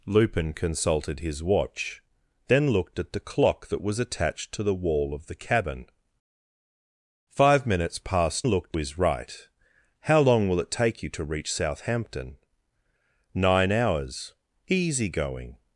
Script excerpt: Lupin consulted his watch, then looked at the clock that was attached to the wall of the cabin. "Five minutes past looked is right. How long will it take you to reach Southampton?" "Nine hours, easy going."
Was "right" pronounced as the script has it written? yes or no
yes